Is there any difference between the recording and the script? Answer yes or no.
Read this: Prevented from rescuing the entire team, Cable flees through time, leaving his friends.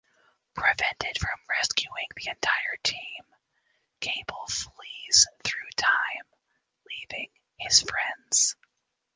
no